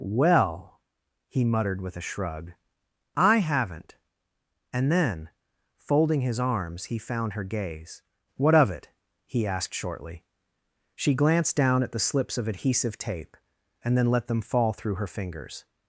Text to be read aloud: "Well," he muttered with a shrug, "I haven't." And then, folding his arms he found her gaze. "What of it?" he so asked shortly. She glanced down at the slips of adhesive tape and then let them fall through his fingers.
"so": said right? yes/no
no